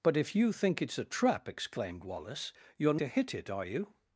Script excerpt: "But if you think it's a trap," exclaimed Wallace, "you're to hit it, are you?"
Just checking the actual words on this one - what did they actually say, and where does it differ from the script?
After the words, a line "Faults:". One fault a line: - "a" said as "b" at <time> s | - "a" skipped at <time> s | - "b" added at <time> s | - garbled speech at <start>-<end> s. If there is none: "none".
"But if you think it's a trap," exclaimed Wallace, "you're to hit it, are you?"
Faults:
none